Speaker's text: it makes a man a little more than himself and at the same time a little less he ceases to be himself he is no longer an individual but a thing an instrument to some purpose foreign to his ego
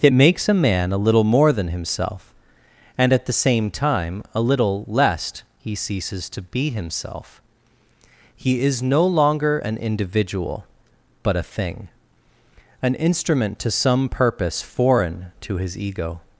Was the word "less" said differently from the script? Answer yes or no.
yes